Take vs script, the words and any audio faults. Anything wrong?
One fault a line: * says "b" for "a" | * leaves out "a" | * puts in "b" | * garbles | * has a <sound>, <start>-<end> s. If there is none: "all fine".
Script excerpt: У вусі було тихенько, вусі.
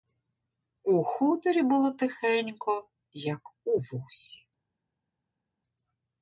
* says "хуторі" for "вусі"
* puts in "як у"